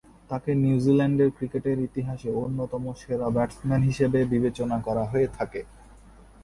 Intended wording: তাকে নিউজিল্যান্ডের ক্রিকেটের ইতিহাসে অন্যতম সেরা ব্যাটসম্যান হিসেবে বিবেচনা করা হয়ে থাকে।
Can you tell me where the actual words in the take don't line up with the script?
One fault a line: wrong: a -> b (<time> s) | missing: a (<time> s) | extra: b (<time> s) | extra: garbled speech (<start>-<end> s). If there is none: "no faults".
no faults